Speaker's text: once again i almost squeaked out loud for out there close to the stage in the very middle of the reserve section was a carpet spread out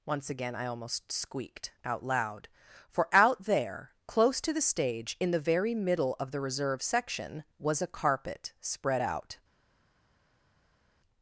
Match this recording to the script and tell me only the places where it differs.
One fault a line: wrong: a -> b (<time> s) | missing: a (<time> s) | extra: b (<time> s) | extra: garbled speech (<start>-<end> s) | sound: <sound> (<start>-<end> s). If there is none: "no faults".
no faults